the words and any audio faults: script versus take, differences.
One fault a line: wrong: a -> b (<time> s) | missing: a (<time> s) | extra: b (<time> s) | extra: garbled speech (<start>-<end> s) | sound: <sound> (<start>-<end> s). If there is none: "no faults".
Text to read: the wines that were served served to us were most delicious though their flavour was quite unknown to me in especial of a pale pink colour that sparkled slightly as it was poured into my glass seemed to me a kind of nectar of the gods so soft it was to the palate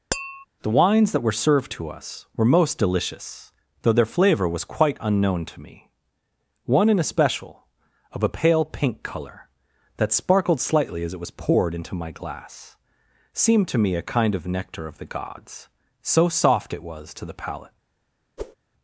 sound: tap (0.1-0.5 s)
missing: served (1.7 s)
extra: one (6.7 s)
sound: whoosh (18.4-18.6 s)